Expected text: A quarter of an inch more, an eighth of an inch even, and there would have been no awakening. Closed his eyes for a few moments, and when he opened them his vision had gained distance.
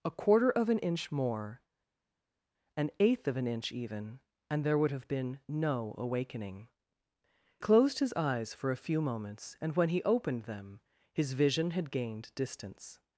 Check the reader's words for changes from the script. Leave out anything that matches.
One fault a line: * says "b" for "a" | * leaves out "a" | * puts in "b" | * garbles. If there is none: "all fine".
all fine